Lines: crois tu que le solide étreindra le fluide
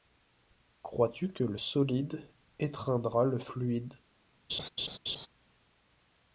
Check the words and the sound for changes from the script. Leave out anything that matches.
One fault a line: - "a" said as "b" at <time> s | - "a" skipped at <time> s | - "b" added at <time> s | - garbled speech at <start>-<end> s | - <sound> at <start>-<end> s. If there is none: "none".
- laugh at 4.5-5.3 s